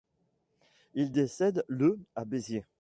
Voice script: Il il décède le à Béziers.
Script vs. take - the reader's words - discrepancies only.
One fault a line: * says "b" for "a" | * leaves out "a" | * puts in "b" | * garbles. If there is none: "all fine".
* leaves out "il"